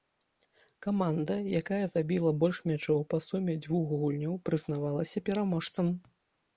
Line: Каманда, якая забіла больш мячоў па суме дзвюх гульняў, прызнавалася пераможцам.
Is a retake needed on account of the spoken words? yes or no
no